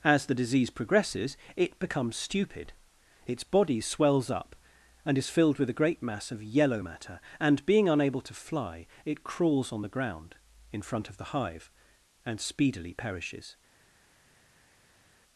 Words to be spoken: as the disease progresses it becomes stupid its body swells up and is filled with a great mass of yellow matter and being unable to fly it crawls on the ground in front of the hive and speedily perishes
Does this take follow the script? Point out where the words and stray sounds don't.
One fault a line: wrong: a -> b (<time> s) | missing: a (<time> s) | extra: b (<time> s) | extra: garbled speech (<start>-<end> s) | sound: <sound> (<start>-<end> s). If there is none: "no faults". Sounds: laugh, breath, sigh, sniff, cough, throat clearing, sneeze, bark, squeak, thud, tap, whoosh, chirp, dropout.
no faults